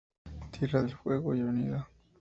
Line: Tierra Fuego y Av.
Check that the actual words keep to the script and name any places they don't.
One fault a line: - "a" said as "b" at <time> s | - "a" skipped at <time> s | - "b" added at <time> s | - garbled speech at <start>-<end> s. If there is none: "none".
- "del" added at 0.8 s